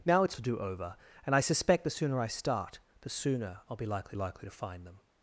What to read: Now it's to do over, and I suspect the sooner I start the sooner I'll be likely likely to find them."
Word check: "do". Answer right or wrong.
right